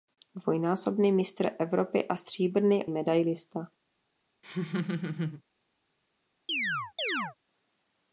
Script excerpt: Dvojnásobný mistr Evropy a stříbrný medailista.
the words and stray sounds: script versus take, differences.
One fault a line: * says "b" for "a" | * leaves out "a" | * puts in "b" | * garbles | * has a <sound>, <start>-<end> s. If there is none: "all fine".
* has a laugh, 4.4-5.4 s
* has a chirp, 6.5-7.4 s